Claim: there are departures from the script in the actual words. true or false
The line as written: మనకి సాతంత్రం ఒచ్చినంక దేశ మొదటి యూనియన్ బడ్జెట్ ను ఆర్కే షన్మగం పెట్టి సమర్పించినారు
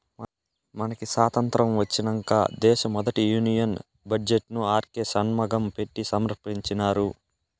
false